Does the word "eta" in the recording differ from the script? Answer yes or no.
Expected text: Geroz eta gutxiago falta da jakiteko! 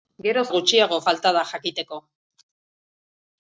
yes